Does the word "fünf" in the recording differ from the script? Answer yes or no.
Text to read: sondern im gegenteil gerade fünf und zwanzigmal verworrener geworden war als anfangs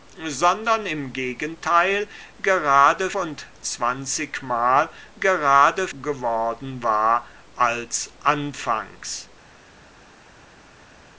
yes